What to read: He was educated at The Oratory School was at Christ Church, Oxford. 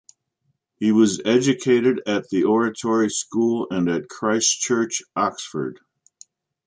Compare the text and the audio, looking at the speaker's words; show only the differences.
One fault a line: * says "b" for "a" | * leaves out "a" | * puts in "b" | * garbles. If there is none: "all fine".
* says "and" for "was"